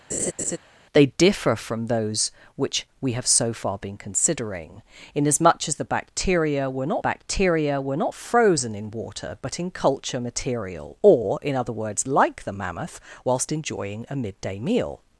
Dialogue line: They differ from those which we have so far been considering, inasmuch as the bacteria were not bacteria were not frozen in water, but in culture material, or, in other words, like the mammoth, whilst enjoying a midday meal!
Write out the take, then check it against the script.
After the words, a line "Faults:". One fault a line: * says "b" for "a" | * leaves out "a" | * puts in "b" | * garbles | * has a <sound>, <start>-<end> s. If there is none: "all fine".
They differ from those which we have so far been considering, inasmuch as the bacteria were not bacteria were not frozen in water, but in culture material, or, in other words, like the mammoth, whilst enjoying a midday meal!
Faults:
* has a laugh, 0.1-0.6 s